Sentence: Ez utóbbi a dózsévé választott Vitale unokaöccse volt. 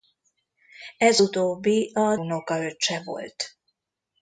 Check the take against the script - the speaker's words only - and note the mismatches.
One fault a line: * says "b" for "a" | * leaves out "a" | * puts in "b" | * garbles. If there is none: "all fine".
* leaves out "dózsévé választott Vitale"